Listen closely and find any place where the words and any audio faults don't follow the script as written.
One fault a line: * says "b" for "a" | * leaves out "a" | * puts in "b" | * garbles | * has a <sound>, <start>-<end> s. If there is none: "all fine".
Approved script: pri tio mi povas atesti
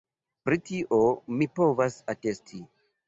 all fine